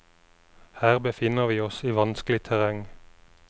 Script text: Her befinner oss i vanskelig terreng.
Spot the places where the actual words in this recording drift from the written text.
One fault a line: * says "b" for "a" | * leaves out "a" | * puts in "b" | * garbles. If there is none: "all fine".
* puts in "vi"